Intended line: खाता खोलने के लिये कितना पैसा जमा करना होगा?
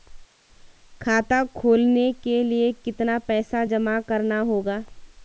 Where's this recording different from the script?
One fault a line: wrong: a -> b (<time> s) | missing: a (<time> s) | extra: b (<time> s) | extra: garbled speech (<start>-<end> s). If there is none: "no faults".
no faults